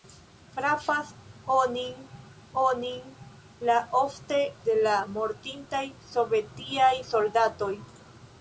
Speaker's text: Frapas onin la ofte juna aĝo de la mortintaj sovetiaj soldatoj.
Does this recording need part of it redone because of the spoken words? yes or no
yes